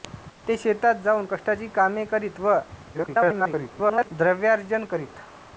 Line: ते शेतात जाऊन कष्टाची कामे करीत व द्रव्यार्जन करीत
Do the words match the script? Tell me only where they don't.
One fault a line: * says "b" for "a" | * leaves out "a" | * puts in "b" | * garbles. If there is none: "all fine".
* garbles